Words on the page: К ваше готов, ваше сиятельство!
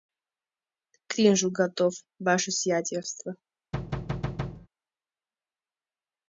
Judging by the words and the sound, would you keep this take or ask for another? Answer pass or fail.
fail